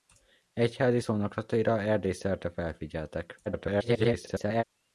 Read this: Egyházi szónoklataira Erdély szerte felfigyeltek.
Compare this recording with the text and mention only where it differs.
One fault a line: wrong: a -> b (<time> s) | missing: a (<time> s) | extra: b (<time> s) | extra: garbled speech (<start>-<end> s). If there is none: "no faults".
extra: garbled speech (3.5-4.6 s)